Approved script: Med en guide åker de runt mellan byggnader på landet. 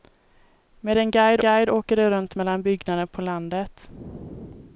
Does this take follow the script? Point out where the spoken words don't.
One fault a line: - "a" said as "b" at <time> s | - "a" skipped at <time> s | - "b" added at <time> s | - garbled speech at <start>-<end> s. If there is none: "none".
- "guide" added at 1.4 s